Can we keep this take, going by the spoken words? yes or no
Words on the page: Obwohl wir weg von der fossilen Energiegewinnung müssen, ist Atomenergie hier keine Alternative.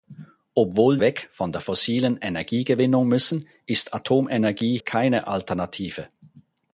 no